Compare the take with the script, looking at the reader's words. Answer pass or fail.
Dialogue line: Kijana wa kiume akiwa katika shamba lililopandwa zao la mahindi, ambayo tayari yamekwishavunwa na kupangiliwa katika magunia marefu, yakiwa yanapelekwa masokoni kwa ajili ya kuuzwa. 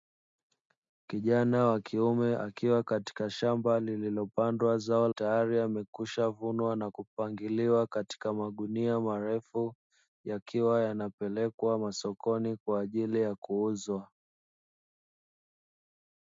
fail